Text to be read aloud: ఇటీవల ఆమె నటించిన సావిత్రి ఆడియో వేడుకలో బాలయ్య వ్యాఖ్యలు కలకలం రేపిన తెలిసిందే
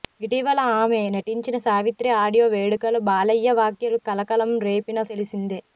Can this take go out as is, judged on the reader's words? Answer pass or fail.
pass